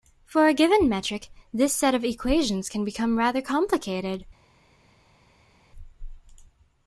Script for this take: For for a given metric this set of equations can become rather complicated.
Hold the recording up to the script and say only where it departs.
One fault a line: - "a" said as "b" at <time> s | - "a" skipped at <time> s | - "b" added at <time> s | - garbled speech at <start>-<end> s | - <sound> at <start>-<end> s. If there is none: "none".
- "for" skipped at 0.5 s